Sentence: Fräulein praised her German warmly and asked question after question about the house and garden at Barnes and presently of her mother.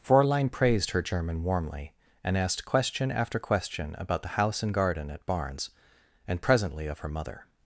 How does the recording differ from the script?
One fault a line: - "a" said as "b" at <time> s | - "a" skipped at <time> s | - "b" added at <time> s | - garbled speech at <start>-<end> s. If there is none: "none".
none